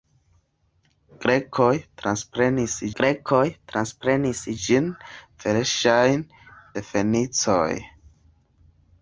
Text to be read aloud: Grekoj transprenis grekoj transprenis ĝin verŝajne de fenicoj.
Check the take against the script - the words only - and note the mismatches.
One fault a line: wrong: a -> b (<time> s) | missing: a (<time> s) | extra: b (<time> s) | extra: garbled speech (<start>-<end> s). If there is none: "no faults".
no faults